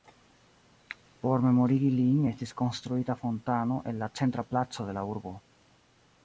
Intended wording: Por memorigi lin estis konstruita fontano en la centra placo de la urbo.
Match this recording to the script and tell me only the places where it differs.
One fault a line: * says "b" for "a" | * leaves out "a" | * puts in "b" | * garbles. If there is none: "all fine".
all fine